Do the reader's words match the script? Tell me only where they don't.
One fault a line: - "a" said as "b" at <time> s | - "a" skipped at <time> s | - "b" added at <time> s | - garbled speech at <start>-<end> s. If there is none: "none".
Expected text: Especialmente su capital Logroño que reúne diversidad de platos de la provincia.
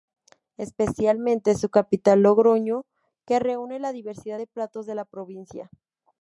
- "la" added at 3.8 s